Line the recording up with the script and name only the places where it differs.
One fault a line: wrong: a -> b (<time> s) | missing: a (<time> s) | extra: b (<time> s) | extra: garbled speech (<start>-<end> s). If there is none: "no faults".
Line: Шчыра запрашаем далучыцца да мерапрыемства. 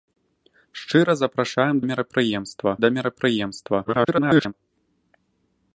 wrong: далучыцца -> мерапрыемства (1.9 s)
extra: garbled speech (3.8-4.5 s)